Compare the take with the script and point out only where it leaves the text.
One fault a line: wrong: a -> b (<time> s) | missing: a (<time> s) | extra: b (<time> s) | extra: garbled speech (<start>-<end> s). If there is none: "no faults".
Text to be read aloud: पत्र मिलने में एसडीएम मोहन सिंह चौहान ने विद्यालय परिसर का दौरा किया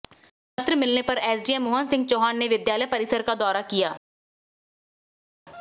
wrong: में -> पर (1.0 s)